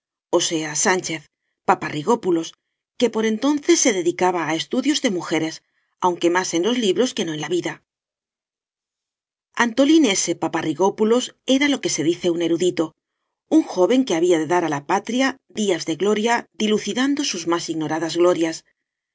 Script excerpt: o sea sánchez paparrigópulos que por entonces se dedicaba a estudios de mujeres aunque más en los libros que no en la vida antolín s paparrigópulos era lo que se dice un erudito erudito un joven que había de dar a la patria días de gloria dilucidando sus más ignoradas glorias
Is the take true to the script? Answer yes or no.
no